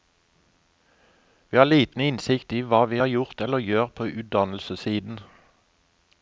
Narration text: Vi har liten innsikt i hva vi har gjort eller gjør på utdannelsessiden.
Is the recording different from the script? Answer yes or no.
no